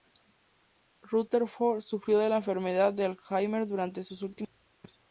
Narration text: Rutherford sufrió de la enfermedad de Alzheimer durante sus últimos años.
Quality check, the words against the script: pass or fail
pass